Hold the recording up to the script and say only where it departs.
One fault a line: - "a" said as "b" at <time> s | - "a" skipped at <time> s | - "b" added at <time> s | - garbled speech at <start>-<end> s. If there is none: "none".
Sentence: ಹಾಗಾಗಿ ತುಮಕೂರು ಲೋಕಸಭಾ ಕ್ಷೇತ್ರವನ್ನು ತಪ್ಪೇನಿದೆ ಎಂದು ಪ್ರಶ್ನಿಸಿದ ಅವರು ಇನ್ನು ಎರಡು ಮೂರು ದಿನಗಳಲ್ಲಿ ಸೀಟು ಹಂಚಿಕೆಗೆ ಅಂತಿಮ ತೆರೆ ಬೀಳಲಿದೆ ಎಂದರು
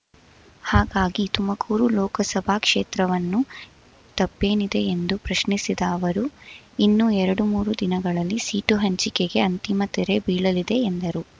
none